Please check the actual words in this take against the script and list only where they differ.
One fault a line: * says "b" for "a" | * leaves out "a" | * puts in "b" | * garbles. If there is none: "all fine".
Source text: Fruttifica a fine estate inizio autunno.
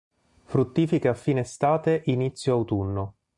all fine